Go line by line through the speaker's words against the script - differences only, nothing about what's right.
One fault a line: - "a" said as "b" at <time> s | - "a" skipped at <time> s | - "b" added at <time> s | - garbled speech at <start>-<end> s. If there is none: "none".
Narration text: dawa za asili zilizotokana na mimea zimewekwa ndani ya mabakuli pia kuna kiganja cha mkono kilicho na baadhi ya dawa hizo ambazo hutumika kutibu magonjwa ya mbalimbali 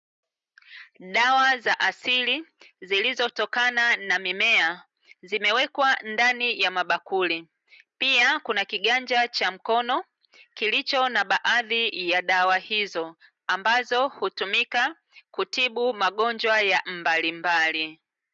none